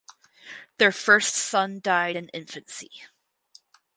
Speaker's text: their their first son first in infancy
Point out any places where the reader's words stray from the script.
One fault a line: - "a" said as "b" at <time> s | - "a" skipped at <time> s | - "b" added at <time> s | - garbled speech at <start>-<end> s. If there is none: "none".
- "their" skipped at 0.9 s
- "first" said as "died" at 1.8 s